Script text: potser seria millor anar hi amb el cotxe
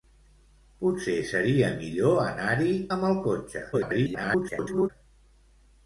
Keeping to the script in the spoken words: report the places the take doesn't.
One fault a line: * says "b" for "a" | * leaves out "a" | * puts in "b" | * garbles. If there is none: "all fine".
* garbles